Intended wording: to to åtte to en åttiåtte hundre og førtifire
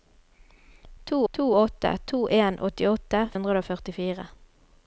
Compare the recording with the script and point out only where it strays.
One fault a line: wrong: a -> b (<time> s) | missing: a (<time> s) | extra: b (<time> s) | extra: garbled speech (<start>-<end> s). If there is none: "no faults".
no faults